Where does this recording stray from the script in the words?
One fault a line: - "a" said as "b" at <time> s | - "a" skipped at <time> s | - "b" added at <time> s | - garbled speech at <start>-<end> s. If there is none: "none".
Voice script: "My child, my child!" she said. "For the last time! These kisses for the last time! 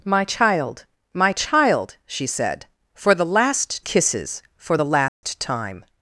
- "time These" skipped at 3.9 s